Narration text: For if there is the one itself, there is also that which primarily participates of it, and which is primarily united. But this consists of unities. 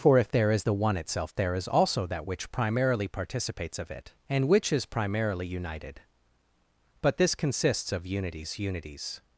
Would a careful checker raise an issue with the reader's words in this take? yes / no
yes